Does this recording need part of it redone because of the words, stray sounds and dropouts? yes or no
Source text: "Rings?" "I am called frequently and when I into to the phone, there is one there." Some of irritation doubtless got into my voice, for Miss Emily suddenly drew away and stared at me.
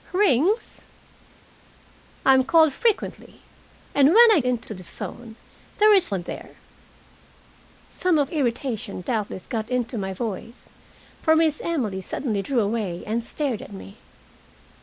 no